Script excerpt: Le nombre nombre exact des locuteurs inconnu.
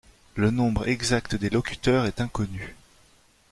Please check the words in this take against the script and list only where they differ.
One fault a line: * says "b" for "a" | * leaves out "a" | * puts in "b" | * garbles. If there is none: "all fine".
* leaves out "nombre"
* puts in "est"